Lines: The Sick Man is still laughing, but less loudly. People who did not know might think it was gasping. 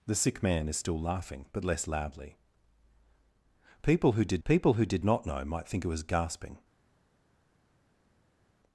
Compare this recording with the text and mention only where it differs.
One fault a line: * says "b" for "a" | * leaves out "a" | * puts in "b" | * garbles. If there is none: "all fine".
* puts in "people who did"